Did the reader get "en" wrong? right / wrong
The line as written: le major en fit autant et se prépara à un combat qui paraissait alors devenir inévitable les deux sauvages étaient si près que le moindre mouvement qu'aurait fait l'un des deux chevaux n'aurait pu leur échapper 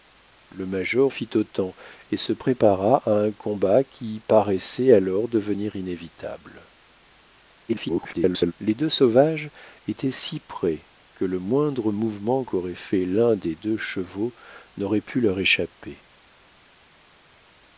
wrong